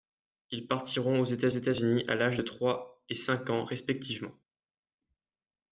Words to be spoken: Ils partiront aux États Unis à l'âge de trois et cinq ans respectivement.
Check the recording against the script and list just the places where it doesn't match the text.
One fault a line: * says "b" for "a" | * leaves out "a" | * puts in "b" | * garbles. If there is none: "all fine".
* puts in "États"